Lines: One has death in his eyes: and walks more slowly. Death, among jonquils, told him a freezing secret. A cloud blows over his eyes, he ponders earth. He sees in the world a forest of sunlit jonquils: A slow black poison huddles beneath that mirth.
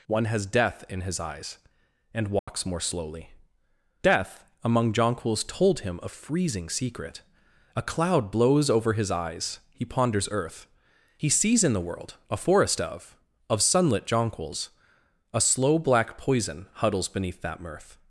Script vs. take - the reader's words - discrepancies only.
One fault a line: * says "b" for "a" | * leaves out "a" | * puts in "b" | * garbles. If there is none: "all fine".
* puts in "of"